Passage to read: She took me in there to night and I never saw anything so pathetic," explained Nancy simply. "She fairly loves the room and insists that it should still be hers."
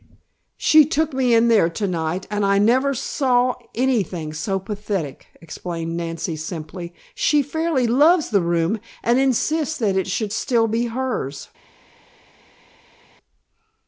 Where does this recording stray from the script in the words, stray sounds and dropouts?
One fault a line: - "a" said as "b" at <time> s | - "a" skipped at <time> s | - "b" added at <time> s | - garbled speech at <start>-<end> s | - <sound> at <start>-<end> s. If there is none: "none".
none